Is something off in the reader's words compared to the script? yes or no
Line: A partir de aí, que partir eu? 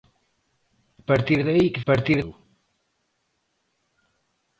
no